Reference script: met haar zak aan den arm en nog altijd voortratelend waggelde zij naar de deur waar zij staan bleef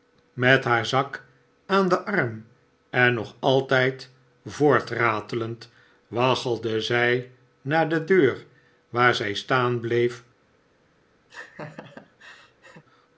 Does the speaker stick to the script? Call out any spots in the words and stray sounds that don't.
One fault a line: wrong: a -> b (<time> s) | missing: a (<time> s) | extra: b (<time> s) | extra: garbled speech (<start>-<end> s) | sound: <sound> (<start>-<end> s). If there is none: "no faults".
sound: laugh (11.3-12.8 s)